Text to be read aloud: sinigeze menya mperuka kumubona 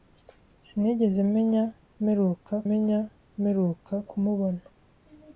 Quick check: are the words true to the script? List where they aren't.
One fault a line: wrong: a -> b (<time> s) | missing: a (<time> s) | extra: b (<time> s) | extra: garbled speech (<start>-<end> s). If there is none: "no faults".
extra: menya mperuka (2.7 s)